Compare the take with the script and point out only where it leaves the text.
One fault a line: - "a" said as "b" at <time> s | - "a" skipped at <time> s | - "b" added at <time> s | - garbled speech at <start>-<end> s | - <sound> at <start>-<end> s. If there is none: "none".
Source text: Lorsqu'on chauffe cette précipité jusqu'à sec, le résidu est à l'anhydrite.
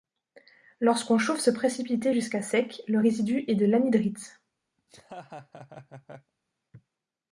- "cette" said as "ce" at 1.4 s
- "à" said as "de" at 3.5 s
- laugh at 4.8-6.3 s